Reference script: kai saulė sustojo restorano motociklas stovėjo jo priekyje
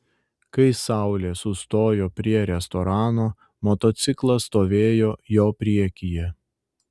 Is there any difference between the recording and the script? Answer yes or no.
yes